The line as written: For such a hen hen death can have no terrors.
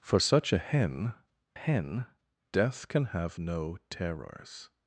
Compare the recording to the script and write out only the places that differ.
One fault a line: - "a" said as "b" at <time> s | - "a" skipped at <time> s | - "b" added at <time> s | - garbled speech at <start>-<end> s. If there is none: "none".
none